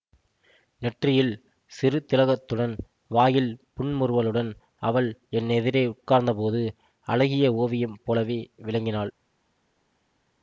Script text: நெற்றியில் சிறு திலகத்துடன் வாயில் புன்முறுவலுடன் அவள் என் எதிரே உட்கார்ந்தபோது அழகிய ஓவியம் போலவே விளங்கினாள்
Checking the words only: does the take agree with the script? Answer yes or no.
yes